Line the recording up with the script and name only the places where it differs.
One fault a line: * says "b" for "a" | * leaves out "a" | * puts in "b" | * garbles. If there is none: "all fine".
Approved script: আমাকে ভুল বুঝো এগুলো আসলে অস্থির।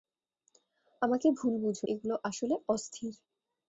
all fine